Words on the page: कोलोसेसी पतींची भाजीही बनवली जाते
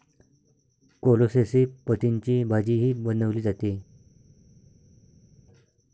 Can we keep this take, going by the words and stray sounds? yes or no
yes